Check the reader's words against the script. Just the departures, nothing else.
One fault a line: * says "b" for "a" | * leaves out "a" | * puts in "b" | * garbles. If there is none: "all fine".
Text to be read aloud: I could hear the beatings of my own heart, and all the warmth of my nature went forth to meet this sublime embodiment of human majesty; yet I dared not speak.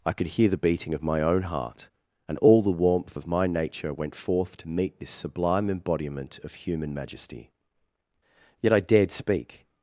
* says "beating" for "beatings"
* leaves out "not"